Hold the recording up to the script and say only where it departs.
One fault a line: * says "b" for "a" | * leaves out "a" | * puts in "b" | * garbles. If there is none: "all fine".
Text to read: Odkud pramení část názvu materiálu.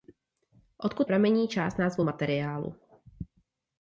all fine